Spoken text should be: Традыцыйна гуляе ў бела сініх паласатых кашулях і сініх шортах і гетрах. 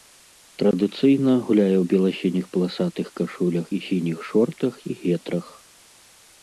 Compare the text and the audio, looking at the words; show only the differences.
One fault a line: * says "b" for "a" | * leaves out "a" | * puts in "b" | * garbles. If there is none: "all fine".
all fine